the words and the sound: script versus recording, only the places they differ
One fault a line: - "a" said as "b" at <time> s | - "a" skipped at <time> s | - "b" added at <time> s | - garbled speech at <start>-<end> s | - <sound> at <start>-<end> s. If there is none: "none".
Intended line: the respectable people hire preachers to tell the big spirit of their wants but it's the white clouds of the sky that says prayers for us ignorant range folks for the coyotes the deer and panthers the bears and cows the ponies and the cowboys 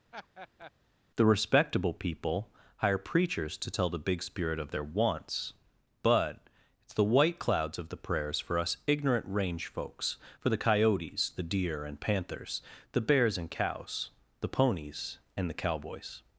- laugh at 0.1-0.7 s
- "sky that says" skipped at 8.0 s